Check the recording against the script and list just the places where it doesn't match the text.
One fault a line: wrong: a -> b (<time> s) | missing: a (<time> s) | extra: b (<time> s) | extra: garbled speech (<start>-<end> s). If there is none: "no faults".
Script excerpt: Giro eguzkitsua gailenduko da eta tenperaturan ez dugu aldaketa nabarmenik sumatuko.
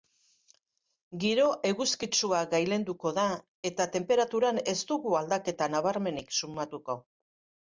no faults